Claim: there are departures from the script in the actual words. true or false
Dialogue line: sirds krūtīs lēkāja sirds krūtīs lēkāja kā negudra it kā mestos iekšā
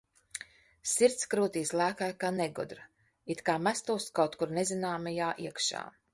true